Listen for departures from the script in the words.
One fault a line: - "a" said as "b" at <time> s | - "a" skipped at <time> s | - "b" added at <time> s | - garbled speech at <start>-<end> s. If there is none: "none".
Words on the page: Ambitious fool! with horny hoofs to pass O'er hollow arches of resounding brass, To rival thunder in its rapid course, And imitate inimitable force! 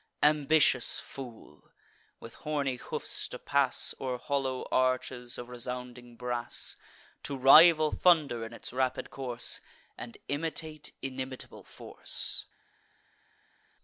none